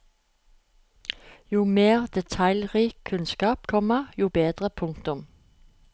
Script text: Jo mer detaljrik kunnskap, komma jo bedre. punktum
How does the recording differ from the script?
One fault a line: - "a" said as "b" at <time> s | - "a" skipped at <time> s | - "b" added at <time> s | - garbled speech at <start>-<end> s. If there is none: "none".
none